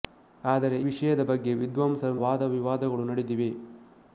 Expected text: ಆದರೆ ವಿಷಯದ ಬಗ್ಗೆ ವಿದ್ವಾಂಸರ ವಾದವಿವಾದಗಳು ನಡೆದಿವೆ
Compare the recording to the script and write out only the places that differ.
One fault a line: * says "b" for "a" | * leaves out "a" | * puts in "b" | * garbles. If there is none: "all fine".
all fine